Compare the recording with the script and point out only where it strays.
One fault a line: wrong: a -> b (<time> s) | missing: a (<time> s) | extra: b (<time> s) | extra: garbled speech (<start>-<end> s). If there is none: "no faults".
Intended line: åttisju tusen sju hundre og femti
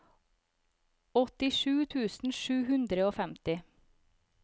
no faults